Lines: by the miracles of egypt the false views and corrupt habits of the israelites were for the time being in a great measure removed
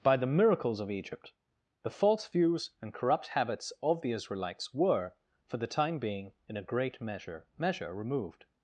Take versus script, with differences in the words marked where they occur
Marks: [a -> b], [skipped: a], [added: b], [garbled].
by the miracles of egypt the false views and corrupt habits of the israelites were for the time being in a great measure [added: measure] removed